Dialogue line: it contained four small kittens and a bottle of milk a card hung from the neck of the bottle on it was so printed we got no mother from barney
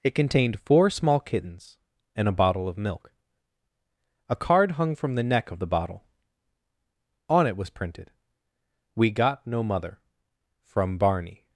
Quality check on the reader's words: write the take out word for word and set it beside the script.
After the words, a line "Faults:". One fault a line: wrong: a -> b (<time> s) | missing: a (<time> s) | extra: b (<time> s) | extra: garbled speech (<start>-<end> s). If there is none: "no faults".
it contained four small kittens and a bottle of milk a card hung from the neck of the bottle on it was printed we got no mother from barney
Faults:
missing: so (7.7 s)